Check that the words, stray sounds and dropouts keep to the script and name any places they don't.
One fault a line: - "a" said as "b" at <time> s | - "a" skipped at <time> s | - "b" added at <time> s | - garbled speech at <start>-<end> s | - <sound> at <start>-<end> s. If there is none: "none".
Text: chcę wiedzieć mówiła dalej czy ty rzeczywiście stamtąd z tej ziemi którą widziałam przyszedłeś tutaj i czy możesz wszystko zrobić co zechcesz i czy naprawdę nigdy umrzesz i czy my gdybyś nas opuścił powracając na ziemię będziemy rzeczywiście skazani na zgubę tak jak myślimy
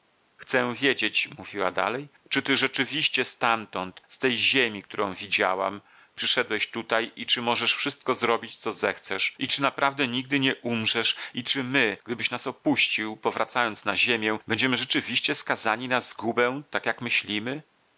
- "nie" added at 10.4 s